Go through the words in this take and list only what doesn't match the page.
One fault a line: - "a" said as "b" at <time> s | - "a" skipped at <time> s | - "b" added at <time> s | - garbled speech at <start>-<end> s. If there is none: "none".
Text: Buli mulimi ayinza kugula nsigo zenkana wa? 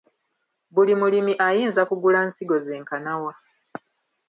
none